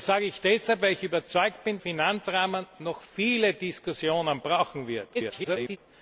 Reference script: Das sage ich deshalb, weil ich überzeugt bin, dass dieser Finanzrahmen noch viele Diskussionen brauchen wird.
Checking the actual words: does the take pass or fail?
fail